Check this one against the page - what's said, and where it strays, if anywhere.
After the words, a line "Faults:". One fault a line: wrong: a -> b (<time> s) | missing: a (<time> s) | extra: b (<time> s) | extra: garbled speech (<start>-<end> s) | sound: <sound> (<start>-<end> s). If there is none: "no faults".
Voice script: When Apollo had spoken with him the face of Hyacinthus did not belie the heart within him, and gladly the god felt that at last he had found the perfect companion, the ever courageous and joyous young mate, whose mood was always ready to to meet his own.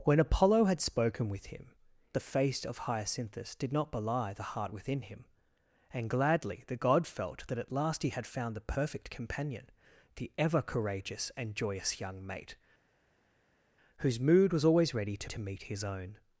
When Apollo had spoken with him the face of Hyacinthus did not belie the heart within him, and gladly the god felt that at last he had found the perfect companion, the ever courageous and joyous young mate, whose mood was always ready to to meet his own.
Faults:
no faults